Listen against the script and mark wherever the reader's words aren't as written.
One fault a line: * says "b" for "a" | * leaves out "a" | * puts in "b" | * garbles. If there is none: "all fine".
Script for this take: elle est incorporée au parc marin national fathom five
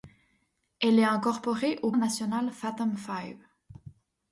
* leaves out "parc marin"